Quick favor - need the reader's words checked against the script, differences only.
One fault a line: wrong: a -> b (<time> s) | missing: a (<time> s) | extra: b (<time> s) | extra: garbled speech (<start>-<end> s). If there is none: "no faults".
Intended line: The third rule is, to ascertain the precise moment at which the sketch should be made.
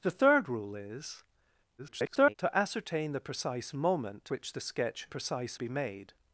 extra: garbled speech (1.8-2.4 s)
missing: at (4.3 s)
wrong: should -> precise (5.1 s)